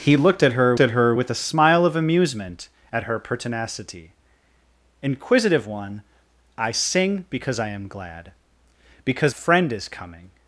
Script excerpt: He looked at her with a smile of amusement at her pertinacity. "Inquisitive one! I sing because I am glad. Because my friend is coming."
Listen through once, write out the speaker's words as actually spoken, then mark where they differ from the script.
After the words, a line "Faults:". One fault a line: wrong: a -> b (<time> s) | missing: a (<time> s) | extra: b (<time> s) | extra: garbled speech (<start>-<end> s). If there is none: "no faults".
He looked at her at her with a smile of amusement at her pertinacity. "Inquisitive one! I sing because I am glad. Because friend is coming."
Faults:
extra: at her (0.8 s)
missing: my (9.4 s)